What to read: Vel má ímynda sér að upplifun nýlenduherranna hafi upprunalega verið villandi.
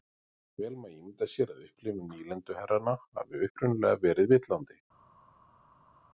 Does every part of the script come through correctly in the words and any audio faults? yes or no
yes